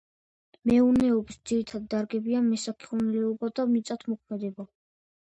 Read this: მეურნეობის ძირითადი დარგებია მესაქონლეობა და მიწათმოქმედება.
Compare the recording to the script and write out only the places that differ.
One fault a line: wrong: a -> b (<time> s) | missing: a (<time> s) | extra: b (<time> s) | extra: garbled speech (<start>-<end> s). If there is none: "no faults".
no faults